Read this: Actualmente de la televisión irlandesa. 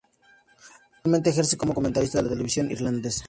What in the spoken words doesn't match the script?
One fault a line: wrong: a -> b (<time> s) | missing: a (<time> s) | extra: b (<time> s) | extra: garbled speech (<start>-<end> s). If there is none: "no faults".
extra: ejerce como comentarista (1.3 s)